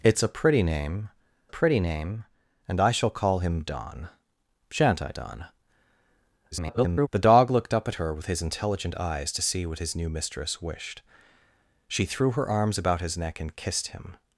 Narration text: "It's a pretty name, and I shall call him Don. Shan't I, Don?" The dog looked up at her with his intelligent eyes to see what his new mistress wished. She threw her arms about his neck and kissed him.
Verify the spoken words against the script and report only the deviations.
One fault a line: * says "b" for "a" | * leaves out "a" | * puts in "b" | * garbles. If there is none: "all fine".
* puts in "pretty name"
* garbles